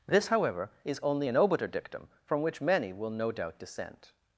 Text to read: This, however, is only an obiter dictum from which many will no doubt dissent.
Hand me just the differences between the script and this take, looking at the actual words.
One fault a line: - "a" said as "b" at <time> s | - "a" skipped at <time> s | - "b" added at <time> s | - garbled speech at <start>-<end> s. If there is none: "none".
none